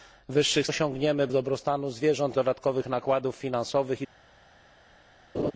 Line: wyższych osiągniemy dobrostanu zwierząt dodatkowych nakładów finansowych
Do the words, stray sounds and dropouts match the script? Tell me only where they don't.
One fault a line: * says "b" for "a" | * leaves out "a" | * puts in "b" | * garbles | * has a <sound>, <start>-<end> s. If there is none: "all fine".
* has a laugh, 5.3-5.5 s